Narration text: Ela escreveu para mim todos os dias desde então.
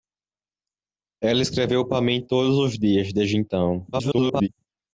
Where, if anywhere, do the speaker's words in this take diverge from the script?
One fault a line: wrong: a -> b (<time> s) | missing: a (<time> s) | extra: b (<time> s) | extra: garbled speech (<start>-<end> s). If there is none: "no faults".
extra: garbled speech (3.9-4.5 s)